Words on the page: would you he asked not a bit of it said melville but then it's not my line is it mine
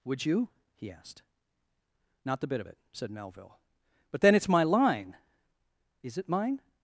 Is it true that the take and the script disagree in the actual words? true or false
true